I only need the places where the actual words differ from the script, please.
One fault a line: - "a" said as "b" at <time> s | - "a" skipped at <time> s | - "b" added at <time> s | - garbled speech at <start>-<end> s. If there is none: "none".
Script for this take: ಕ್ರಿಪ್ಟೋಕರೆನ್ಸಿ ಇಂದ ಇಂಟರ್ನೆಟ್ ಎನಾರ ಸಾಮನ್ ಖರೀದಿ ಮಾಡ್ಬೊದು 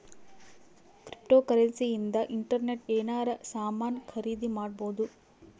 none